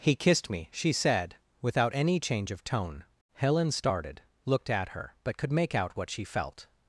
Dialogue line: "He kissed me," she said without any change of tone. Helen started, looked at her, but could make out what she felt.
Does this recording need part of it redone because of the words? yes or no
no